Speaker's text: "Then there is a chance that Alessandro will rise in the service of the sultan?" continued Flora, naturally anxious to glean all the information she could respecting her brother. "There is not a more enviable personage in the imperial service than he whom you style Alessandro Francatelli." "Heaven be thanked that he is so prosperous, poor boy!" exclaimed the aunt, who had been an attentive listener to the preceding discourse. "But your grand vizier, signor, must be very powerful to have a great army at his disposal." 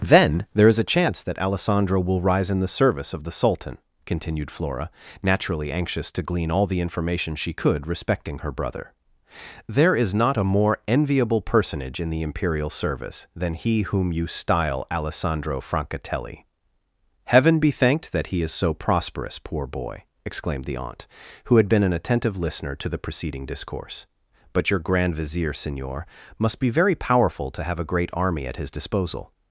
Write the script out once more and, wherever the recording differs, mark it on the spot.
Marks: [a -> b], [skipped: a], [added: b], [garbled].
"Then there is a chance that Alessandro will rise in the service of the sultan?" continued Flora, naturally anxious to glean all the information she could respecting her brother. "There is not a more enviable personage in the imperial service than he whom you style Alessandro Francatelli." "Heaven be thanked that he is so prosperous, poor boy!" exclaimed the aunt, who had been an attentive listener to the preceding discourse. "But your grand vizier, signor, must be very powerful to have a great army at his disposal."